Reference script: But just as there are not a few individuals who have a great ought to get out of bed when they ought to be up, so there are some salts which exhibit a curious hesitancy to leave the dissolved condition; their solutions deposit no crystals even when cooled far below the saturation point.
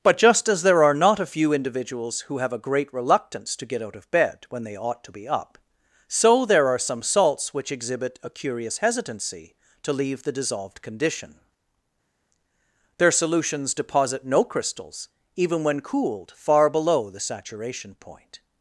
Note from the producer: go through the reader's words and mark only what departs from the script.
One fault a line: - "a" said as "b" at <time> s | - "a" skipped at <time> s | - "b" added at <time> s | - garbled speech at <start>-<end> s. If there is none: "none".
- "ought" said as "reluctance" at 2.9 s